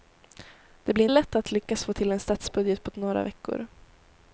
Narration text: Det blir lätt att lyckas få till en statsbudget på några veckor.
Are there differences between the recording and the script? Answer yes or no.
no